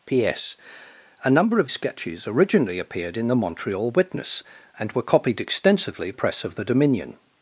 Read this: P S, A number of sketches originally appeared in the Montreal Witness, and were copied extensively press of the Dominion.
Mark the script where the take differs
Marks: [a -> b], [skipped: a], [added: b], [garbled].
P S, A number of sketches originally appeared in the Montreal Witness, and were copied extensively press of the Dominion.